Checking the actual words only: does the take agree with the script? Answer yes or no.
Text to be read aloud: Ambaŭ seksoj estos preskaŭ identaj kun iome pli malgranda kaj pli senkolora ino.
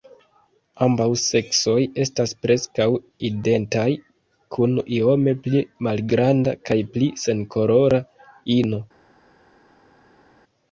no